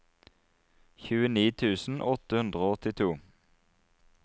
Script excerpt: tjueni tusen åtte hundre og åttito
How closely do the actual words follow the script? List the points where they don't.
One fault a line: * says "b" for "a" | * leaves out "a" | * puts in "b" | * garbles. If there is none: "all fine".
all fine